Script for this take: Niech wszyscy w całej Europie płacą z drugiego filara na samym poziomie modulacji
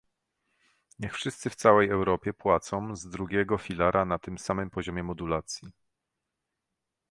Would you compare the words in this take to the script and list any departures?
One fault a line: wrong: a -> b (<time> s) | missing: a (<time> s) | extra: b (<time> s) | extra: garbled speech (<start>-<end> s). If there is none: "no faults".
extra: tym (4.2 s)